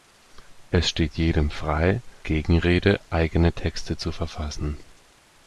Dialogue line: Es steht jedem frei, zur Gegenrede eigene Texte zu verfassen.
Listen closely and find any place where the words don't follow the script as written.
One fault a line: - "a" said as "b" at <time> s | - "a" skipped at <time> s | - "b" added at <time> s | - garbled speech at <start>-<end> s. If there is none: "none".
- "zur" skipped at 2.0 s